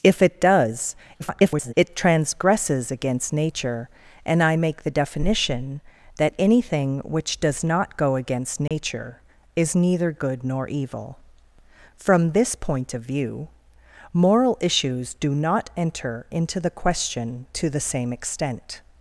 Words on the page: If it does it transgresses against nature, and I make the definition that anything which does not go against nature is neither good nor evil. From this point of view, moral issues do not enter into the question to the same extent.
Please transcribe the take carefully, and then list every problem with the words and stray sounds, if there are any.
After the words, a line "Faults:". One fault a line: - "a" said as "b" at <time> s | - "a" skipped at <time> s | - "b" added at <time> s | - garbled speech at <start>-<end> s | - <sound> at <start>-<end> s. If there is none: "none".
If it does [garbled] it transgresses against nature, and I make the definition that anything which does not go against nature is neither good nor evil. From this point of view, moral issues do not enter into the question to the same extent.
Faults:
- garbled speech at 1.2-1.7 s
- dropout at 8.7-8.7 s